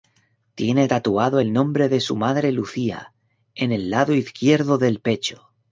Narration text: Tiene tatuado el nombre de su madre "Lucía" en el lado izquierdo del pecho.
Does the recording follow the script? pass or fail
pass